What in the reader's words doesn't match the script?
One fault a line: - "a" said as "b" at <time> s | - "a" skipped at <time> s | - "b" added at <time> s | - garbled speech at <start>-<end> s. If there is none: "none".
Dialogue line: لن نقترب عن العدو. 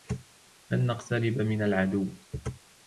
- "عن" said as "من" at 1.4 s